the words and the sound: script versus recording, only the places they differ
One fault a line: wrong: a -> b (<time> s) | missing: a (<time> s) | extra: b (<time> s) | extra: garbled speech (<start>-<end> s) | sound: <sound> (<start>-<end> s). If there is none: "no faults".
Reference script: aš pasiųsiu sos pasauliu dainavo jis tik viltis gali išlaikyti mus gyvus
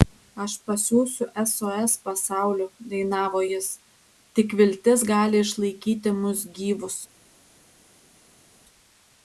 no faults